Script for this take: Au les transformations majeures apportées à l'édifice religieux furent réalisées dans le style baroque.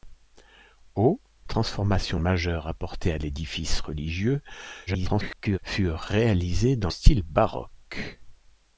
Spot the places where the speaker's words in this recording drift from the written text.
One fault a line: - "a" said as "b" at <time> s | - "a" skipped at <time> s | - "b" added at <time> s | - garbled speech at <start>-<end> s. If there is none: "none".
- "les" skipped at 1.2 s
- garbled speech at 4.9-5.6 s
- "le" skipped at 6.9 s